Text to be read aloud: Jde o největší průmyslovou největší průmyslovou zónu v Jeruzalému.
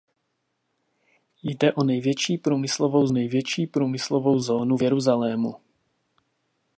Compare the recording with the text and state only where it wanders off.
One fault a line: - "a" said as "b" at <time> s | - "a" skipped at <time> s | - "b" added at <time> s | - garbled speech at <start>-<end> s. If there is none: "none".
none